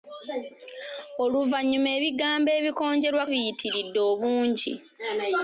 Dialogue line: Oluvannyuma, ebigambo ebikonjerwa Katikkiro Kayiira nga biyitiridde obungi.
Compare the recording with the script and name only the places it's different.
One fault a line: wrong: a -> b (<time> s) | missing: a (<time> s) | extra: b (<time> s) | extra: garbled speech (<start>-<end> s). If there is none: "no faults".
missing: Katikkiro Kayiira nga (3.2 s)